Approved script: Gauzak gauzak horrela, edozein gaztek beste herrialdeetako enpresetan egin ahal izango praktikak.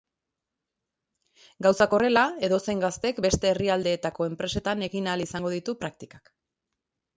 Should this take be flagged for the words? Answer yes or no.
yes